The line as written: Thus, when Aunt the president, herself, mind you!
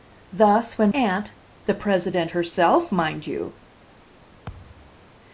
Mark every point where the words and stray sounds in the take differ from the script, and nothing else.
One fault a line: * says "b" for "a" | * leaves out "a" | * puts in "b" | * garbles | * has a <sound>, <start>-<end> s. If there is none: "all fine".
* has a thud, 4.5-5.0 s